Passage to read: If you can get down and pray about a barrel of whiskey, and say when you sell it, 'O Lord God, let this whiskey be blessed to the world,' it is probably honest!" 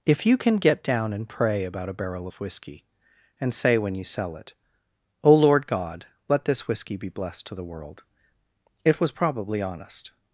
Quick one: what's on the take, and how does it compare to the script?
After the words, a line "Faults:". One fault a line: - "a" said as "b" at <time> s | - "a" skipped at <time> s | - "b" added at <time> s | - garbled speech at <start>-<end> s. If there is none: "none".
If you can get down and pray about a barrel of whiskey, and say when you sell it, 'O Lord God, let this whiskey be blessed to the world,' it was probably honest!"
Faults:
- "is" said as "was" at 9.0 s